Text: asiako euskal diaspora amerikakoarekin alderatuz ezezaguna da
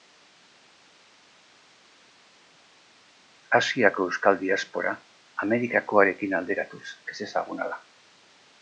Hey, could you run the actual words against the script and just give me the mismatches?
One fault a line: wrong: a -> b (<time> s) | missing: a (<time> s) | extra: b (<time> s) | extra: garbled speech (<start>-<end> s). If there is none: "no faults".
no faults